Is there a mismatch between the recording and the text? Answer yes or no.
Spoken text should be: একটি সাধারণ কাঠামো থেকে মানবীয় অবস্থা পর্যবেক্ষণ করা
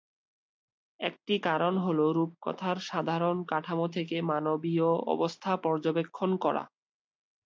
yes